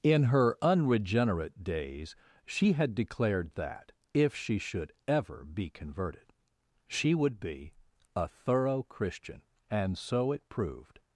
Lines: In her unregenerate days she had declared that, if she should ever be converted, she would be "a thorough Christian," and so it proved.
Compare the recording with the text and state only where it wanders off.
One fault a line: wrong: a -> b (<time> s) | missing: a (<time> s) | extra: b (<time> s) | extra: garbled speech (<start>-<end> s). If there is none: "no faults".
no faults